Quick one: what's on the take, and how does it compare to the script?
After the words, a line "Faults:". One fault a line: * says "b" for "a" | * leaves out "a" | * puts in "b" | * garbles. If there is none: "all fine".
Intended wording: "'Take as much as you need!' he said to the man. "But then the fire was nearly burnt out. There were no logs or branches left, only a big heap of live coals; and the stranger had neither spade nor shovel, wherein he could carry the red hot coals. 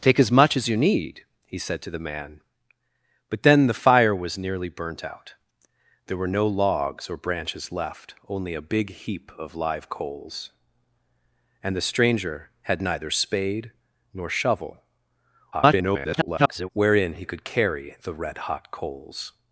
"'Take as much as you need!' he said to the man. "But then the fire was nearly burnt out. There were no logs or branches left, only a big heap of live coals; and the stranger had neither spade nor shovel, [garbled] wherein he could carry the red hot coals.
Faults:
* garbles